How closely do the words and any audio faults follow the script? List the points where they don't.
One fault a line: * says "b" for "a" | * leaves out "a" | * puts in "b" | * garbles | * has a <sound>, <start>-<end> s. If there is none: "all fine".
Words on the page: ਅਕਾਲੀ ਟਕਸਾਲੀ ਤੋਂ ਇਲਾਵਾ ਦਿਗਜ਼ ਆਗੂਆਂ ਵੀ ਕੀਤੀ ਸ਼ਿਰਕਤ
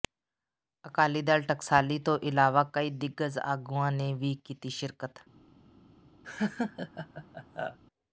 * puts in "ਦਲ"
* puts in "ਕਈ"
* puts in "ਨੇ"
* has a laugh, 6.2-7.8 s